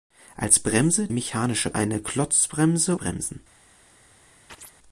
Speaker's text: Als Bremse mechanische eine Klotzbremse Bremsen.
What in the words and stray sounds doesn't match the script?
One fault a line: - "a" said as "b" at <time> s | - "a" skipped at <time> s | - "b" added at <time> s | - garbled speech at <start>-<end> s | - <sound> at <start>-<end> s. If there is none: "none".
- chirp at 4.5-4.8 s